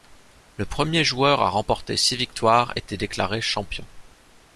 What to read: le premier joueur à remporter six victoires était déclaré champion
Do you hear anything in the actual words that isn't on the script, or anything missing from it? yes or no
no